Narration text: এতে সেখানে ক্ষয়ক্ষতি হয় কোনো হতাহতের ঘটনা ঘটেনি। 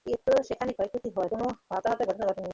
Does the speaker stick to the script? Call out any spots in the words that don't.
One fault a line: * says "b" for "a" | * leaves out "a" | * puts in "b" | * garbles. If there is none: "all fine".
all fine